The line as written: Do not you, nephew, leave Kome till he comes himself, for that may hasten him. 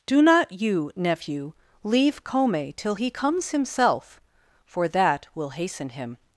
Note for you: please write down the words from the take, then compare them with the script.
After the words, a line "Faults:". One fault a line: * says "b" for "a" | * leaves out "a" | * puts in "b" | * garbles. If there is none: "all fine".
Do not you, nephew, leave Kome till he comes himself, for that will hasten him.
Faults:
* says "will" for "may"